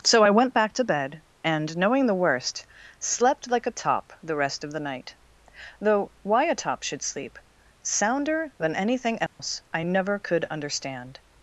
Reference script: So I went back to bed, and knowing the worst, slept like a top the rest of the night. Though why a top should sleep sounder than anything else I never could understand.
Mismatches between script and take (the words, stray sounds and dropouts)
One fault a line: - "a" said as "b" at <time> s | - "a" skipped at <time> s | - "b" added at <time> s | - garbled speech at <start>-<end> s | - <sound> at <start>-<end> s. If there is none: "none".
- dropout at 9.3-9.4 s